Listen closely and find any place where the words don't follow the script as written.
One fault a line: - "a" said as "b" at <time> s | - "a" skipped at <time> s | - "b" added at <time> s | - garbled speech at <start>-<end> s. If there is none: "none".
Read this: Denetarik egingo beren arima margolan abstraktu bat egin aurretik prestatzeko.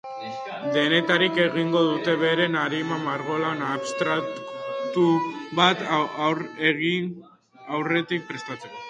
- "dute" added at 1.9 s